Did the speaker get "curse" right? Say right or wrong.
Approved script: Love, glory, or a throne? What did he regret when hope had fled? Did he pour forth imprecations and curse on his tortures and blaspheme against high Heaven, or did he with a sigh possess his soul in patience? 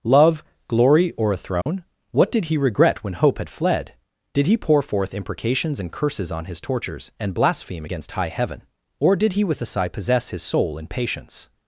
wrong